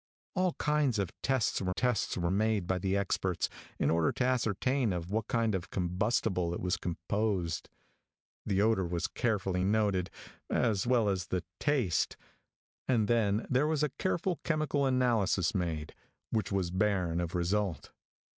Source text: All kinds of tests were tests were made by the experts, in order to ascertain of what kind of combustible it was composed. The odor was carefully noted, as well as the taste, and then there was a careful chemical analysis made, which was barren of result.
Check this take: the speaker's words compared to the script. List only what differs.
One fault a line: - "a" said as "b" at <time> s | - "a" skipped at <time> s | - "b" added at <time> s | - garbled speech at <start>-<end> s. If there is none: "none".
none